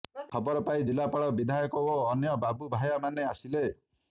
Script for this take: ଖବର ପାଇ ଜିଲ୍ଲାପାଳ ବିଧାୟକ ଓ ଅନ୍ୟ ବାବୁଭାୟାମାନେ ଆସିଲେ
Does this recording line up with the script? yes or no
yes